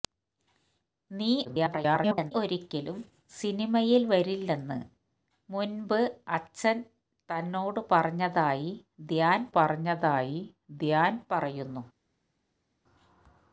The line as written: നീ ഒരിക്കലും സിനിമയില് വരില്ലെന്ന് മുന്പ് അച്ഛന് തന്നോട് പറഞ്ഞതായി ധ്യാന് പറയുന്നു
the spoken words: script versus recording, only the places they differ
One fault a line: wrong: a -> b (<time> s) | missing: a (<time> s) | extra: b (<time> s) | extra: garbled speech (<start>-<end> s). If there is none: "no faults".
extra: garbled speech (1.4-2.3 s)
extra: പറഞ്ഞതായി ധ്യാന് (9.5 s)